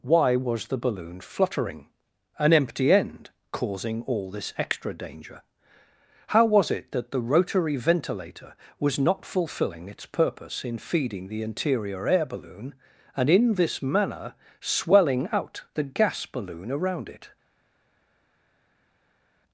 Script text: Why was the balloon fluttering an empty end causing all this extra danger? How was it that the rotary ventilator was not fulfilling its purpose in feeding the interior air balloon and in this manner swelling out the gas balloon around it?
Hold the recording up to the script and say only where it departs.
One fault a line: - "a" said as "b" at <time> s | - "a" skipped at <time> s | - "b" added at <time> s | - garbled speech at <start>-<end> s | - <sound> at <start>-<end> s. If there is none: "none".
none